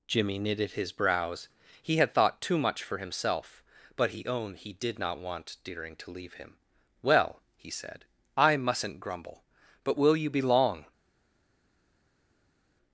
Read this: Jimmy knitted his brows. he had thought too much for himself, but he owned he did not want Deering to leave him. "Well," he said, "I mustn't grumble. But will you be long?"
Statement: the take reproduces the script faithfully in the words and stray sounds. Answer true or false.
true